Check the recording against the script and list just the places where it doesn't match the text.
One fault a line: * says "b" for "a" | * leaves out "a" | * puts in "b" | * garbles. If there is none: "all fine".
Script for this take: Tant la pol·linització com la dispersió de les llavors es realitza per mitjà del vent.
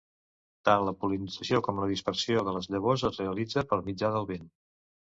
all fine